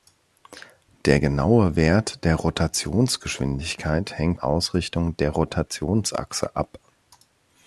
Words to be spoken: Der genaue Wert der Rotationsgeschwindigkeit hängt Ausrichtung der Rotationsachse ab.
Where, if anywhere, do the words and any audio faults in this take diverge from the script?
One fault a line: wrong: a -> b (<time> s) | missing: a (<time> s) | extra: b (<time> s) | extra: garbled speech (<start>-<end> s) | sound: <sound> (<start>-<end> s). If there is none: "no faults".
no faults